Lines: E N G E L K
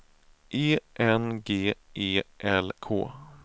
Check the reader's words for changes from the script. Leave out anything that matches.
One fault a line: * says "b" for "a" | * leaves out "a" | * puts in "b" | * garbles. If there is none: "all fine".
all fine